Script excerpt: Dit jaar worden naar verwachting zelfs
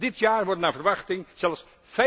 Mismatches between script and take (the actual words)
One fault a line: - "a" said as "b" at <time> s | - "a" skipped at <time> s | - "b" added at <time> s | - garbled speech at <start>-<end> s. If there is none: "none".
none